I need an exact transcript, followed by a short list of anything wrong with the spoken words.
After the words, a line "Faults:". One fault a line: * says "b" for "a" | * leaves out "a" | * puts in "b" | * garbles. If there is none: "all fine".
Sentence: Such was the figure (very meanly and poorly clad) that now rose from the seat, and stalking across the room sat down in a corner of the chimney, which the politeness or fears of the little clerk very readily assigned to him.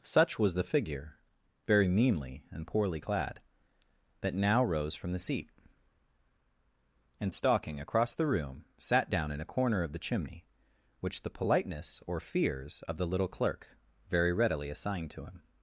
Such was the figure (very meanly and poorly clad) that now rose from the seat, and stalking across the room sat down in a corner of the chimney, which the politeness or fears of the little clerk very readily assigned to him.
Faults:
all fine